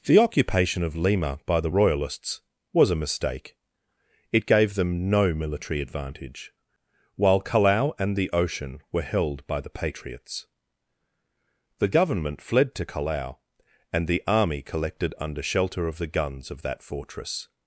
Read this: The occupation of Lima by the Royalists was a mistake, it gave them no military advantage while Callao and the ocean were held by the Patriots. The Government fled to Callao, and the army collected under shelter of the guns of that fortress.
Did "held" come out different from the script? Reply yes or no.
no